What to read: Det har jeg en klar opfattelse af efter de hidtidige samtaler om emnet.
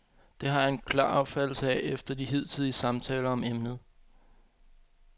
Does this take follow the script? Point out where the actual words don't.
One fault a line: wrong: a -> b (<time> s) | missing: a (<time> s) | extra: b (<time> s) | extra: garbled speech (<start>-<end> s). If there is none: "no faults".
no faults